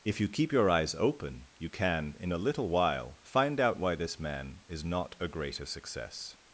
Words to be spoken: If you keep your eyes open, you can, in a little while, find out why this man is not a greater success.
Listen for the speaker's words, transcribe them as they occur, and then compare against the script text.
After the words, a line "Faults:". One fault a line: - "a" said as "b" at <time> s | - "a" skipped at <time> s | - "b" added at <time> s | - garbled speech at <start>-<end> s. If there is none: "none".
If you keep your eyes open, you can, in a little while, find out why this man is not a greater success.
Faults:
none